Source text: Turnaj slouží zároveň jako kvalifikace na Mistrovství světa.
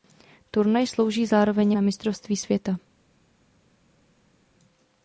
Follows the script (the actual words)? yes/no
no